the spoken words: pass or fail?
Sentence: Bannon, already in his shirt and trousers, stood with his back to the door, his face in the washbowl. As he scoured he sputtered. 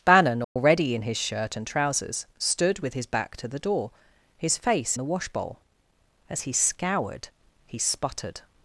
fail